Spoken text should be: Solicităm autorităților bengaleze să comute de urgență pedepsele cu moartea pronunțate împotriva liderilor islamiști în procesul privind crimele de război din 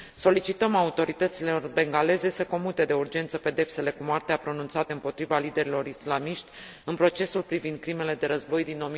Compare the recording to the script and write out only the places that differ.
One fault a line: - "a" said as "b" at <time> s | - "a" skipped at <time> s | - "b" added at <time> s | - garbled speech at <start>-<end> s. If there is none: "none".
none